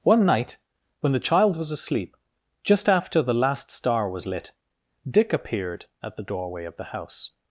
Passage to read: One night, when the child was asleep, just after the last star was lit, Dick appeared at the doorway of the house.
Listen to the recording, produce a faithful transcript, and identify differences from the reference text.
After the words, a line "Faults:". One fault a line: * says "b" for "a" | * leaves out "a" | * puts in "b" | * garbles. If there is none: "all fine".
One night, when the child was asleep, just after the last star was lit, Dick appeared at the doorway of the house.
Faults:
all fine